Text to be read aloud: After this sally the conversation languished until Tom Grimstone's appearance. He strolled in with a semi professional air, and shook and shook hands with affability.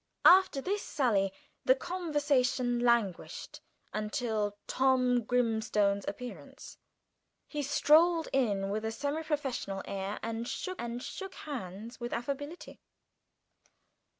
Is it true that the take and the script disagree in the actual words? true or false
false